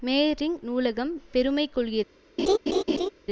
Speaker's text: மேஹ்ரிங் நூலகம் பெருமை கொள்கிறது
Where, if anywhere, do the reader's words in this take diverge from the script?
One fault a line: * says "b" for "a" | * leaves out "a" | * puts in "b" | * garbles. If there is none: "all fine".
all fine